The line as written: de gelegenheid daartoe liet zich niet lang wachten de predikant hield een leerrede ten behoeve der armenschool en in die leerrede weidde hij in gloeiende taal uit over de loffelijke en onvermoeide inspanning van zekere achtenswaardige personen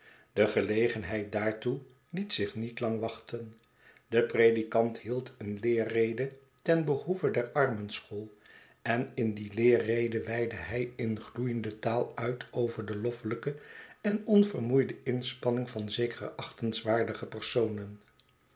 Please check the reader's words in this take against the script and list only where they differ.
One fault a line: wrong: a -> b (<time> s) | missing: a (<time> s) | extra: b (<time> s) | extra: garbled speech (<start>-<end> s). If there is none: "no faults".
no faults